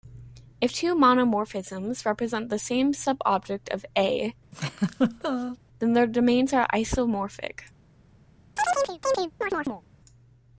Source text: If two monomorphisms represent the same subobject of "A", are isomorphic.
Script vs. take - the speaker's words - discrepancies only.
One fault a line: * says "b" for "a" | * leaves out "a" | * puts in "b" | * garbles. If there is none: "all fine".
* puts in "then their domains"